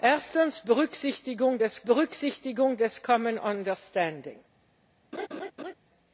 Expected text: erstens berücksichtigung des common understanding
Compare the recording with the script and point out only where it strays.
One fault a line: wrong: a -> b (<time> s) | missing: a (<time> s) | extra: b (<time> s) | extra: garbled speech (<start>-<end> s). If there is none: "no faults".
extra: berücksichtigung des (1.8 s)